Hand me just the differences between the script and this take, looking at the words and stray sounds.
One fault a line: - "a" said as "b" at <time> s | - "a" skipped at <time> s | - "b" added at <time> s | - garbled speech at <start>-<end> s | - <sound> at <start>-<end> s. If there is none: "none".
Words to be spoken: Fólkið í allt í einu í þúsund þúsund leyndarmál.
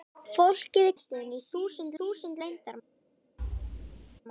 - thud at 3.4-4.2 s